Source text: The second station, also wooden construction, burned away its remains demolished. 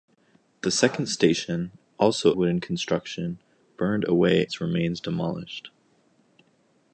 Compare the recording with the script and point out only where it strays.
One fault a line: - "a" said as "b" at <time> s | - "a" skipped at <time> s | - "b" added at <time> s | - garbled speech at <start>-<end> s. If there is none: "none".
none